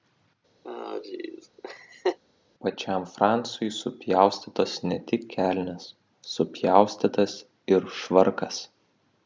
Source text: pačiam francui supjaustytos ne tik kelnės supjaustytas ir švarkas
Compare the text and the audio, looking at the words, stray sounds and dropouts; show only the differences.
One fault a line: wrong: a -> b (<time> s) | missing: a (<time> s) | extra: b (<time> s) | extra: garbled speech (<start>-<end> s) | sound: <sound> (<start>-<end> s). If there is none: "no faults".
sound: laugh (0.6-2.2 s)